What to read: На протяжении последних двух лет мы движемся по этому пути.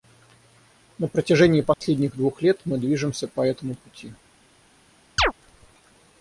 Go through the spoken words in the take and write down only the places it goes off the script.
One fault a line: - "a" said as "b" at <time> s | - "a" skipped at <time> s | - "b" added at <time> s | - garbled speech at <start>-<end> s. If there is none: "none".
none